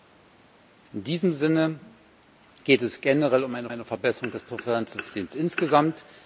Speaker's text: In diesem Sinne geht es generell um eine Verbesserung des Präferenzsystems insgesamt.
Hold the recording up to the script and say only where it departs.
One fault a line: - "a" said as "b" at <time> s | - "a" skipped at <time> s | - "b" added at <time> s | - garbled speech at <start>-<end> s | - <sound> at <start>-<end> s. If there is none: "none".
- "eine" added at 3.7 s